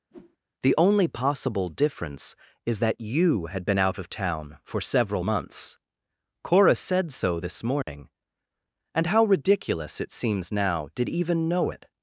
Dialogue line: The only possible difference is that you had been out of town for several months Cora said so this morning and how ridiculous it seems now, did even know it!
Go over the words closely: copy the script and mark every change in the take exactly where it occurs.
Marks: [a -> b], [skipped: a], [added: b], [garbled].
The only possible difference is that you had been out of town for several months Cora said so this morning and how ridiculous it seems now, did even know it!